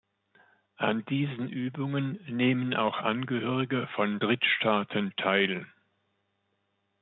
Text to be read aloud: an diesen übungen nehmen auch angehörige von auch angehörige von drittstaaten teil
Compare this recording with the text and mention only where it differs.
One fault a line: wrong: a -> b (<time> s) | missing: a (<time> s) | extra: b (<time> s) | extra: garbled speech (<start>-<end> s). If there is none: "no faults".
missing: auch angehörige von (4.2 s)